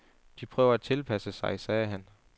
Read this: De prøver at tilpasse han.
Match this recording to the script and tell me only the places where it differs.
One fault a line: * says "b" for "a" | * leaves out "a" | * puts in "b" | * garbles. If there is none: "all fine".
* puts in "sig sagde"